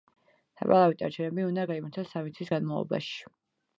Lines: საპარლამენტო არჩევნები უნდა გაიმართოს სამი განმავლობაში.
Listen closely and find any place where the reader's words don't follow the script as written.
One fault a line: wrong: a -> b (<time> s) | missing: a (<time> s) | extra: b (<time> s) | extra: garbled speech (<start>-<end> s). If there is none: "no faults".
extra: თვის (2.4 s)